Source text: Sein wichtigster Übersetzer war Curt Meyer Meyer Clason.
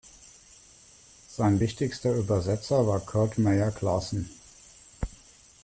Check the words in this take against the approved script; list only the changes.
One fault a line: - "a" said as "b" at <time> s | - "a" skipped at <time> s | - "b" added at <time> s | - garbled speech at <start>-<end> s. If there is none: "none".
- "Meyer" skipped at 3.7 s